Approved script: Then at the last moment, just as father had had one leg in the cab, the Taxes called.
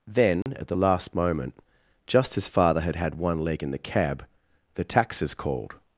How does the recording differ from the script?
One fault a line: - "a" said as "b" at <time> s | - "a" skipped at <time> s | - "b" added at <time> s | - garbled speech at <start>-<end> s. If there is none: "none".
none